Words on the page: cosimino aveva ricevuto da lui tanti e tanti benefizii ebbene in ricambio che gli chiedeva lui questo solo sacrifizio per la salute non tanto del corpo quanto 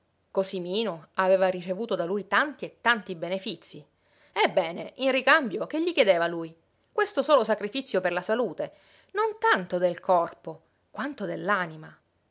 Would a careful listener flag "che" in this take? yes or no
no